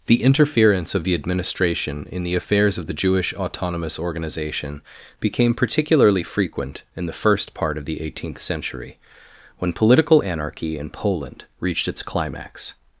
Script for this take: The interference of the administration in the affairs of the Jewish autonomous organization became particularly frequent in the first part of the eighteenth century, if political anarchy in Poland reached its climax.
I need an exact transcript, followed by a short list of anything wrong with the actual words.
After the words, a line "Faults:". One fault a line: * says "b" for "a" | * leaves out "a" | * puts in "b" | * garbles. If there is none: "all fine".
The interference of the administration in the affairs of the Jewish autonomous organization became particularly frequent in the first part of the eighteenth century, when political anarchy in Poland reached its climax.
Faults:
* says "when" for "if"